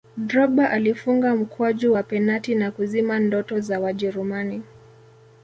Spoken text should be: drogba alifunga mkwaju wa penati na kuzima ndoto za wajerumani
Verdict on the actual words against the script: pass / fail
pass